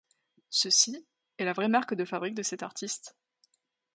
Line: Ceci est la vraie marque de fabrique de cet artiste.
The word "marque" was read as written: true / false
true